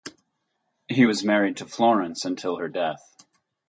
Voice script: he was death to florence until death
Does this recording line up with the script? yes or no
no